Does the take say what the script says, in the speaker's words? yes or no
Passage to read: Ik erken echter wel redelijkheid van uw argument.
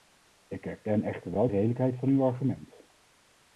yes